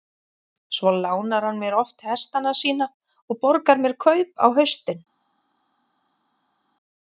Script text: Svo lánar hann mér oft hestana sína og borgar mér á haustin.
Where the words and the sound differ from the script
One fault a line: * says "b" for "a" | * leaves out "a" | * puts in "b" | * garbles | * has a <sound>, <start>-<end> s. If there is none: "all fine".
* puts in "kaup"